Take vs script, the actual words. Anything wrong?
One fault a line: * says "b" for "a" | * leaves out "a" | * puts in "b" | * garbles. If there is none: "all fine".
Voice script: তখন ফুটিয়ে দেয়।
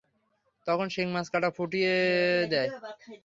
* puts in "শিং মাছ কাটা"